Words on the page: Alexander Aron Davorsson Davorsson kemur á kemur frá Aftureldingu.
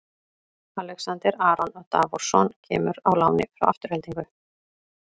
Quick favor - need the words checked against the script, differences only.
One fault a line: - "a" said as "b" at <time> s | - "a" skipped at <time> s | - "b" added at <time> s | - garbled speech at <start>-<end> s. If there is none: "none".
- "Davorsson" skipped at 2.5 s
- "kemur" said as "láni" at 3.2 s